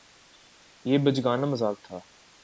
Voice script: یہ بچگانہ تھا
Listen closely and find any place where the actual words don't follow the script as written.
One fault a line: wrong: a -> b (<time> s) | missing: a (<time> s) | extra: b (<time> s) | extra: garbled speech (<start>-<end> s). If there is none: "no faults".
extra: مذاق (1.4 s)